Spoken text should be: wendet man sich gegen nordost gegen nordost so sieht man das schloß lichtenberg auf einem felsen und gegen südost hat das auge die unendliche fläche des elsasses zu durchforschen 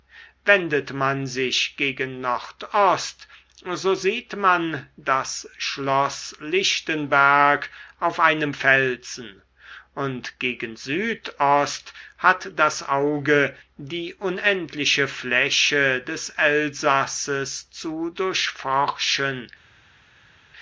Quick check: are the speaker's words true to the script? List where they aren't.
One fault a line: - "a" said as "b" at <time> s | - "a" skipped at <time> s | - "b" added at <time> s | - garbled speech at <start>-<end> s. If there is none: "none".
- "gegen nordost" skipped at 3.3 s